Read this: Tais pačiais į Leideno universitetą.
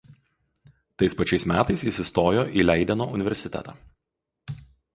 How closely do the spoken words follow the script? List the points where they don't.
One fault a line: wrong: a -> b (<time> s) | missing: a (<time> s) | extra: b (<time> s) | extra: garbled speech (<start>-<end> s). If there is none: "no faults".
extra: metais jis įstojo (1.5 s)